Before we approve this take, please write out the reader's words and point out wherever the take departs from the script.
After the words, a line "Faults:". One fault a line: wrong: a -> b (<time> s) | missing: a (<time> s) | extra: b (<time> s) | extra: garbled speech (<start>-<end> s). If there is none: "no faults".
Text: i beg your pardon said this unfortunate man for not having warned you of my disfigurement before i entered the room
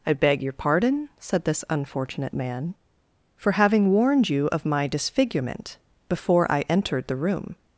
i beg your pardon said this unfortunate man for having warned you of my disfigurement before i entered the room
Faults:
missing: not (3.5 s)